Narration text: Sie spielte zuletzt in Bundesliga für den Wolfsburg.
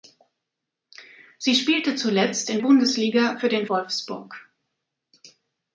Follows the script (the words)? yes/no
yes